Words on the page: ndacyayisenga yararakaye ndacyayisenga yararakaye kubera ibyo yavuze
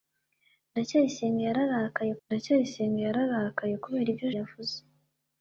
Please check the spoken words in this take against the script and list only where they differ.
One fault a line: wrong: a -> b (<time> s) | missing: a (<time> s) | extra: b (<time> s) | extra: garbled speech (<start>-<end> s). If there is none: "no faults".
no faults